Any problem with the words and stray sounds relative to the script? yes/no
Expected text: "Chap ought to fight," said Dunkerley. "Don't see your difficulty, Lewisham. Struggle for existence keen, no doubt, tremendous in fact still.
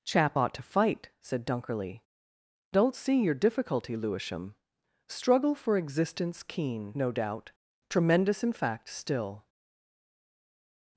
no